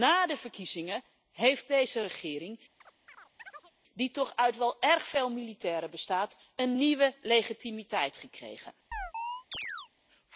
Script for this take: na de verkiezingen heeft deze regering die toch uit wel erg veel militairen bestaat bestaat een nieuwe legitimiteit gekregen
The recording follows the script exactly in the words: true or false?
false